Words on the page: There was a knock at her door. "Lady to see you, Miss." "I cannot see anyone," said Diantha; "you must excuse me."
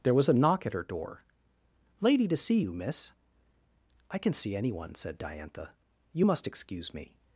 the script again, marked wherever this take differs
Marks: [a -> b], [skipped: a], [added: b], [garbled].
There was a knock at her door. "Lady to see you, Miss." "I [cannot -> can] see anyone," said Diantha; "you must excuse me."